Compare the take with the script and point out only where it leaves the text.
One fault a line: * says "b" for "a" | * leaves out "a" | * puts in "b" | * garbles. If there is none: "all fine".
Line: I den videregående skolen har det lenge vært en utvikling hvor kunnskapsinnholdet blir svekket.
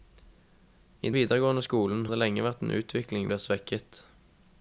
* leaves out "den"
* leaves out "har"
* leaves out "hvor kunnskapsinnholdet"